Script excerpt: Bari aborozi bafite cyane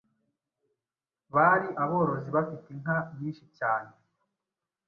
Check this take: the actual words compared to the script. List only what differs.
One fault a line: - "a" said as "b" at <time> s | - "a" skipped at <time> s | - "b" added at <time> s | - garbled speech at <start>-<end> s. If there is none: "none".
- "inka nyinshi" added at 2.7 s